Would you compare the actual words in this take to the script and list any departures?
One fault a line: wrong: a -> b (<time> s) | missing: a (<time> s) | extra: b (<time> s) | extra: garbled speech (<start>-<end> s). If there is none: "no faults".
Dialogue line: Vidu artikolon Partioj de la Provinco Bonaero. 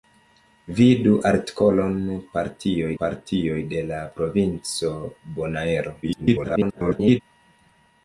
extra: Partioj (3.0 s)
extra: garbled speech (6.0-7.2 s)